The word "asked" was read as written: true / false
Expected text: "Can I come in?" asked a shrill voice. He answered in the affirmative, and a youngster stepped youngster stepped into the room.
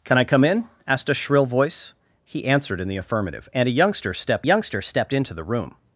true